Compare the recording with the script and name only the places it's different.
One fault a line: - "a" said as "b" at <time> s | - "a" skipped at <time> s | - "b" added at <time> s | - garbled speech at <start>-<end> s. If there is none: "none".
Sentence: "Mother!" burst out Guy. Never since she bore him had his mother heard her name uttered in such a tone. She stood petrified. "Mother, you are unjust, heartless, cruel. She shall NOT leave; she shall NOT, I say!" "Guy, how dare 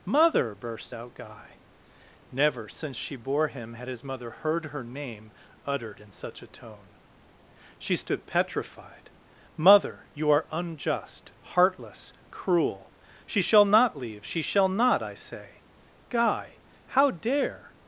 none